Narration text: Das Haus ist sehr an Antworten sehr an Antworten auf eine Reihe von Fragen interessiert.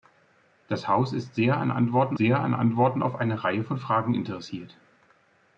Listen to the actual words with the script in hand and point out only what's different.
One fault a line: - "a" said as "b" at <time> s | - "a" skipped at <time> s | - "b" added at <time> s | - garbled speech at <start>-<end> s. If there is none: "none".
none